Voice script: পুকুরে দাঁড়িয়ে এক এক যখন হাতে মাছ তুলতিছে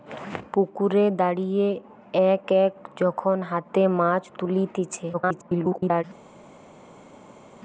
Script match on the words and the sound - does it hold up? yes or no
no